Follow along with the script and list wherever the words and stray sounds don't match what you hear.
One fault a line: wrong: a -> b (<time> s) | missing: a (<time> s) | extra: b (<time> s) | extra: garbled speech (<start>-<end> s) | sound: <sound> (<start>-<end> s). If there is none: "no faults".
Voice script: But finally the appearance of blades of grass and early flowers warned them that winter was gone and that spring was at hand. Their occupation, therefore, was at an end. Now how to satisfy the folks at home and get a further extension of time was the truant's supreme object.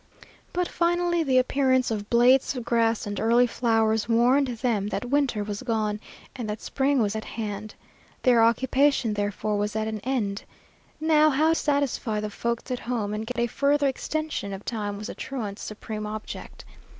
missing: to (11.5 s)
sound: dropout (13.3-13.4 s)